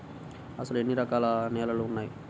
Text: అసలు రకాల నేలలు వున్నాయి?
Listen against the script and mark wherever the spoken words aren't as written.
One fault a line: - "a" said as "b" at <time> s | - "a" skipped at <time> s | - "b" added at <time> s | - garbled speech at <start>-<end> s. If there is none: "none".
- "ఎన్ని" added at 0.8 s